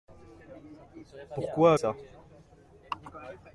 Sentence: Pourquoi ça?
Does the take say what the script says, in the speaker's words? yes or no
yes